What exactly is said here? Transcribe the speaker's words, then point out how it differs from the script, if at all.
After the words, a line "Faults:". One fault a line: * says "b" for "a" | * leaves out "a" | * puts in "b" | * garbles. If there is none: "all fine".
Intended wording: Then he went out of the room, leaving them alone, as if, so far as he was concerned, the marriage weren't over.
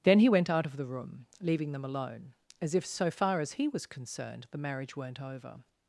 Then he went out of the room, leaving them alone, as if, so far as he was concerned, the marriage weren't over.
Faults:
all fine